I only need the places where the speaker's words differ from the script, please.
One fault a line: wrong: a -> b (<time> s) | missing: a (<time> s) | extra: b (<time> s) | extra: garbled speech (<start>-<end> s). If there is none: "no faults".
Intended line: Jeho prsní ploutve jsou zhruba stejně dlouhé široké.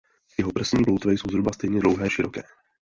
no faults